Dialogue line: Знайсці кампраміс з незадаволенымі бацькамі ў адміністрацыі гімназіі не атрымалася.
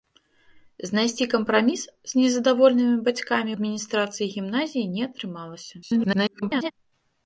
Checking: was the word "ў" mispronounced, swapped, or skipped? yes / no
yes